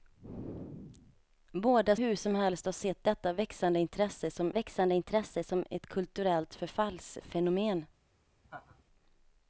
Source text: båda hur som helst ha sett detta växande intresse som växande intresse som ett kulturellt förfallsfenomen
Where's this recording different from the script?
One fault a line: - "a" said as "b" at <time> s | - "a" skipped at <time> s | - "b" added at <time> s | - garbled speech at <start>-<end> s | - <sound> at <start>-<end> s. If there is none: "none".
- laugh at 8.4-8.8 s